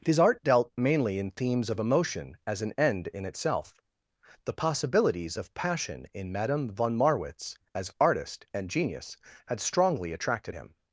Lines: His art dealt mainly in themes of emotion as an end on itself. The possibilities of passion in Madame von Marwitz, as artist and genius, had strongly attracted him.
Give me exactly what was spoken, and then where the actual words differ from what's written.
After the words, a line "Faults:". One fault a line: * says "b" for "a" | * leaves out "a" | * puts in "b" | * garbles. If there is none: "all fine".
His art dealt mainly in themes of emotion as an end in itself. The possibilities of passion in Madame von Marwitz, as artist and genius, had strongly attracted him.
Faults:
* says "in" for "on"